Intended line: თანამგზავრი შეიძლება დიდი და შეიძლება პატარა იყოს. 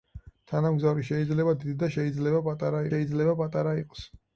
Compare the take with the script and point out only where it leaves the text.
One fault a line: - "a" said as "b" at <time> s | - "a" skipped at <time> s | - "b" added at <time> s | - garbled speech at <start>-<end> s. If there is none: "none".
- "შეიძლება პატარა" added at 2.9 s